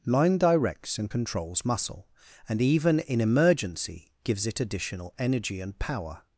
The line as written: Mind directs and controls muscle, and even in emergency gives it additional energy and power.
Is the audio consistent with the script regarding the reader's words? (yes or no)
no